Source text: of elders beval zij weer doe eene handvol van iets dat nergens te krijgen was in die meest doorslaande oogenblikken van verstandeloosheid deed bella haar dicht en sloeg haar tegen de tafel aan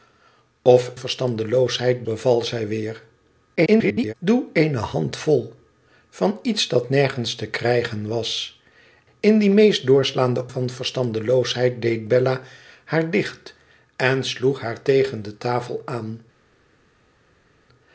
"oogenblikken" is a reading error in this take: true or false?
true